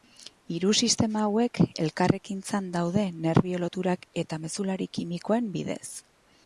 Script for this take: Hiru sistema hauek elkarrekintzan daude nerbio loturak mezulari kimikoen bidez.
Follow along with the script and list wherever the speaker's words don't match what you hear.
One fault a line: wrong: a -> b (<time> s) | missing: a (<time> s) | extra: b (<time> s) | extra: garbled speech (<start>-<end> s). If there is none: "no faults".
extra: eta (4.2 s)